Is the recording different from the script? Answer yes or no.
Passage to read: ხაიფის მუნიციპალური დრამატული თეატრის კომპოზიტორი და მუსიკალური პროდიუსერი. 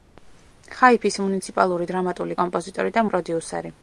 yes